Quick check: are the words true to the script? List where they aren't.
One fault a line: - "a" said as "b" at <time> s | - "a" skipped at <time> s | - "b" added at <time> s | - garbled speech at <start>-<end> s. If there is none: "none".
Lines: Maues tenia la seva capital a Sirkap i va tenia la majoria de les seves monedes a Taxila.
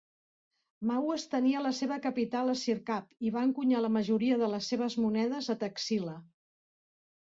- "tenia" said as "encunyar" at 3.5 s